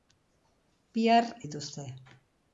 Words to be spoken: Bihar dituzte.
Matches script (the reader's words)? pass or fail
pass